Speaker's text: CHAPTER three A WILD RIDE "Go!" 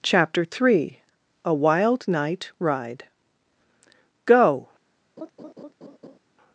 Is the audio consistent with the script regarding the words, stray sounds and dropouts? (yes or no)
no